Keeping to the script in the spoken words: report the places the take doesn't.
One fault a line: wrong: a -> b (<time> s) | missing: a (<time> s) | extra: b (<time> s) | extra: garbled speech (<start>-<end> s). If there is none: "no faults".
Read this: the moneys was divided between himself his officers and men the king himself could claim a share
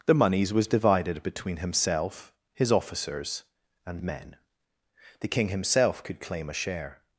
no faults